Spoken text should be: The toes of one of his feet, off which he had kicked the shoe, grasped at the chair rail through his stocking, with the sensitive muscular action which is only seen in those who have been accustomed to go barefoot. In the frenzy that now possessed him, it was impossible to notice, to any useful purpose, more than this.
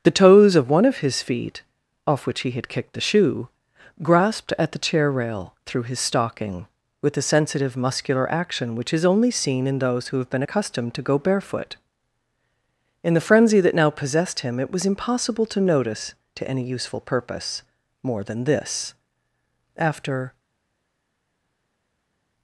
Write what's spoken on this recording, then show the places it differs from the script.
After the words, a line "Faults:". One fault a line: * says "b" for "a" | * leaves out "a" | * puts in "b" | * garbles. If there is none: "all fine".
The toes of one of his feet, off which he had kicked the shoe, grasped at the chair rail through his stocking, with the sensitive muscular action which is only seen in those who have been accustomed to go barefoot. In the frenzy that now possessed him, it was impossible to notice, to any useful purpose, more than this. After
Faults:
* puts in "After"